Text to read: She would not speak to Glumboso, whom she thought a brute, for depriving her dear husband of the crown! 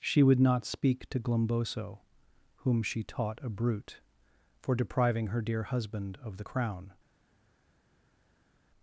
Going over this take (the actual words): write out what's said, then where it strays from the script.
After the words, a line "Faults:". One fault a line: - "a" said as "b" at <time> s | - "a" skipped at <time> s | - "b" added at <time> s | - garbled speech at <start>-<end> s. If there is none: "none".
She would not speak to Glumboso, whom she taught a brute, for depriving her dear husband of the crown!
Faults:
- "thought" said as "taught" at 3.0 s